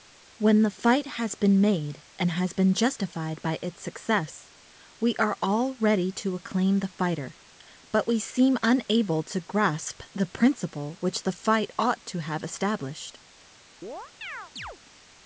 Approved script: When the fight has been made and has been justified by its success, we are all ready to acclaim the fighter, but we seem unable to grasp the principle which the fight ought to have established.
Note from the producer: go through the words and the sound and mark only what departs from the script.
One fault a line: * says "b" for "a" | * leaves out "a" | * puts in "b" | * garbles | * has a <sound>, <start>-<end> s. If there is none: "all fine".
* has a chirp, 13.8-14.8 s